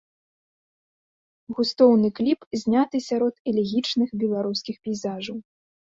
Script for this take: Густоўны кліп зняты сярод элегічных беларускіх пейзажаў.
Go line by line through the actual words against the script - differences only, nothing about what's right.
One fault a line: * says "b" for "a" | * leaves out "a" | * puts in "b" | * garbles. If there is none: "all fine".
all fine